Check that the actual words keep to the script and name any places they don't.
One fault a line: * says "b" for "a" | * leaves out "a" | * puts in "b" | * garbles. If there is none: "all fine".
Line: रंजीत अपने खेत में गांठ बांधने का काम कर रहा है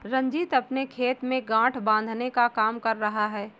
all fine